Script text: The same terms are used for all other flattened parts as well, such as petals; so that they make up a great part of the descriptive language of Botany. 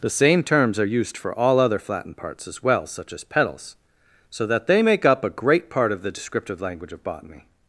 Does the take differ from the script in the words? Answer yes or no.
no